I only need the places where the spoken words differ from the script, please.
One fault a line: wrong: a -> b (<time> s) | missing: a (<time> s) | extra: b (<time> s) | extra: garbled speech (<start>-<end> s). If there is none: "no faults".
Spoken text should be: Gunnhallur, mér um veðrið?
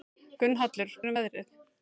no faults